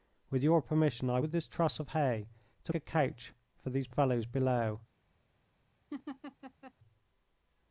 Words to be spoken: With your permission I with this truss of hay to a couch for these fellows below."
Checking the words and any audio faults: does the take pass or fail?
fail